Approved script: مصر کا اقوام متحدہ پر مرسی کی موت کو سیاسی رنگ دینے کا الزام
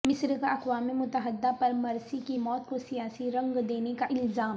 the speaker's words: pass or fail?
pass